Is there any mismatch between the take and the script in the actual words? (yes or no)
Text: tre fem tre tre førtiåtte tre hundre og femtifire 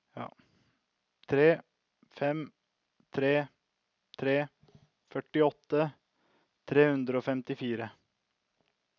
no